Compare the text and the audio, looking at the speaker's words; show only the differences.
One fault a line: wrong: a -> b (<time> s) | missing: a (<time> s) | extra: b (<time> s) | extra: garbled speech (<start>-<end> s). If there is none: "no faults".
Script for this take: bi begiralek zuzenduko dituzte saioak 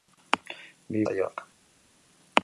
missing: begiralek zuzenduko dituzte (1.0 s)